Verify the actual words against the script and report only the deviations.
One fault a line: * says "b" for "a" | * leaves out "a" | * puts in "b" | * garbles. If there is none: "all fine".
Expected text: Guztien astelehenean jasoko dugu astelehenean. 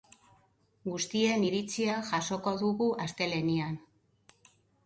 * says "iritzia" for "astelehenean"